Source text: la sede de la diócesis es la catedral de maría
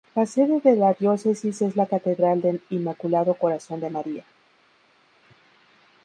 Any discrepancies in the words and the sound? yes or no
yes